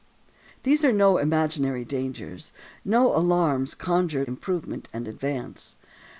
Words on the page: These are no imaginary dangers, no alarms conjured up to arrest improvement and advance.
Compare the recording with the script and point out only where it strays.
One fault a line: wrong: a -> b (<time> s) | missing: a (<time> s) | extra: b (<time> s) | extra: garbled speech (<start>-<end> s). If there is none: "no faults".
missing: up to arrest (4.3 s)